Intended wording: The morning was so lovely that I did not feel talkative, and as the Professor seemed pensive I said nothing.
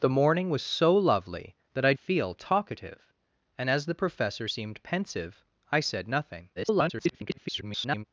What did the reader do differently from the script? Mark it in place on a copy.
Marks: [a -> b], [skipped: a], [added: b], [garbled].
The morning was so lovely that I [skipped: did not] feel talkative, and as the Professor seemed pensive I said nothing. [garbled]